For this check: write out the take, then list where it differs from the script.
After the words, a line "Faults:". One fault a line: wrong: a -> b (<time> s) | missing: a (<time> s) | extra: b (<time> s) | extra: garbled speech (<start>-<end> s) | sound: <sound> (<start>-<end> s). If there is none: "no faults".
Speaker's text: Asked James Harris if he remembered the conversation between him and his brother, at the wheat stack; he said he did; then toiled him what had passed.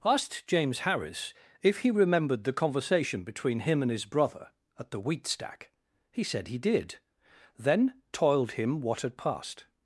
Asked James Harris if he remembered the conversation between him and his brother, at the wheat stack; he said he did; then toiled him what had passed.
Faults:
no faults